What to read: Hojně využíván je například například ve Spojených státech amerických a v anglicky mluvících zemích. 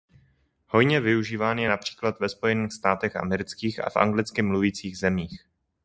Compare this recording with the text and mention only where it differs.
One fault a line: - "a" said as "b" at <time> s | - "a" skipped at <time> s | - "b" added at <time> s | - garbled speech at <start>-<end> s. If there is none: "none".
- "například" skipped at 2.2 s